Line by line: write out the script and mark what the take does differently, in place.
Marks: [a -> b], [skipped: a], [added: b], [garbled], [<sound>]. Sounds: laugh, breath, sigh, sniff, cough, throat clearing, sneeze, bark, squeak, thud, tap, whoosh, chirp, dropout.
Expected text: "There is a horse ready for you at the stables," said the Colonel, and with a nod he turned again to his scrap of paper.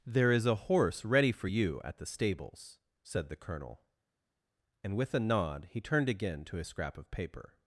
"There is a horse ready for you at the stables," said the Colonel, and with a nod he turned again to his scrap of paper.